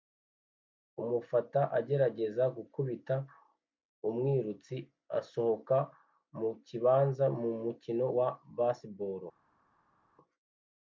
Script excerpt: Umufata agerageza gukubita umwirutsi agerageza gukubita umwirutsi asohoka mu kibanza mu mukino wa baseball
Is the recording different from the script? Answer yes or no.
yes